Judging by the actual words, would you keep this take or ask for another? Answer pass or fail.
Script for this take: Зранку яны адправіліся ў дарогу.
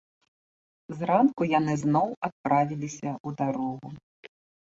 fail